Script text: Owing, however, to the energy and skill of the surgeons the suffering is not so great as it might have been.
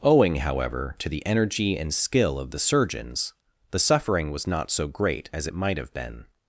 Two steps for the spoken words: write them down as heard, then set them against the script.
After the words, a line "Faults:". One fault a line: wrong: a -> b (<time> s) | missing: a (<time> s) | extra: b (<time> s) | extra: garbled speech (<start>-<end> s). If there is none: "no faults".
Owing, however, to the energy and skill of the surgeons the suffering was not so great as it might have been.
Faults:
wrong: is -> was (4.3 s)